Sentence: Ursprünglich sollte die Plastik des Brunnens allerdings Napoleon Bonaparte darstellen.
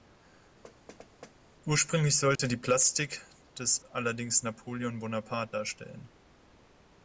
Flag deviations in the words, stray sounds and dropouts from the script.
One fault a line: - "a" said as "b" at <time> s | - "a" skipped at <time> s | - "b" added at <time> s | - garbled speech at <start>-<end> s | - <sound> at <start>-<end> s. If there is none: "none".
- thud at 0.6-1.4 s
- dropout at 2.4-2.4 s
- "Brunnens" skipped at 3.8 s